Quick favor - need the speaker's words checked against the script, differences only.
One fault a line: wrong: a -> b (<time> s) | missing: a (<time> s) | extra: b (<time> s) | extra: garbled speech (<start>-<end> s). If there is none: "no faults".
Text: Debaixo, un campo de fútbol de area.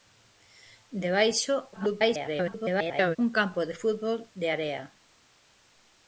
extra: garbled speech (1.7-3.2 s)